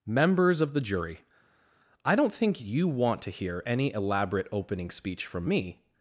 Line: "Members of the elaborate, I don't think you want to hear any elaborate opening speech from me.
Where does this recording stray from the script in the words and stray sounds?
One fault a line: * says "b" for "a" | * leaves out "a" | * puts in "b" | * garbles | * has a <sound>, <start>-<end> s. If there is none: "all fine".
* says "jury" for "elaborate"